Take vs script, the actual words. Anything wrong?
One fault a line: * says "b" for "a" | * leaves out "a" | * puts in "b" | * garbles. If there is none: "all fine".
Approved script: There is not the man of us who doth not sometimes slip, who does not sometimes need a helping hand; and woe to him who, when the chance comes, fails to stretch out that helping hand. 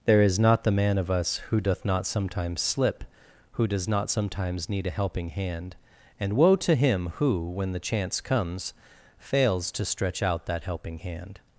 all fine